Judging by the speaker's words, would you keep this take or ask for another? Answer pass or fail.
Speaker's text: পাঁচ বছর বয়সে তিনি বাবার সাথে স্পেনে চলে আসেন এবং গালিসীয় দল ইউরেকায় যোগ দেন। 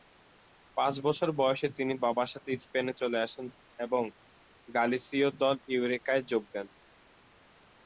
pass